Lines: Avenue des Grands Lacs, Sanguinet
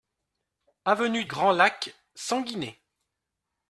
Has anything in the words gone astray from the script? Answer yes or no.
yes